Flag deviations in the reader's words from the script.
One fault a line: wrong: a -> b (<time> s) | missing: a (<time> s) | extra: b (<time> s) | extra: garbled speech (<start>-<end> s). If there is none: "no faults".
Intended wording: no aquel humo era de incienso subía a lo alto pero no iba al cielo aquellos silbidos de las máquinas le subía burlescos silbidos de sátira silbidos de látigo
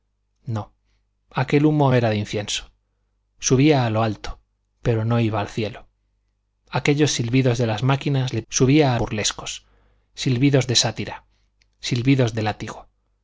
no faults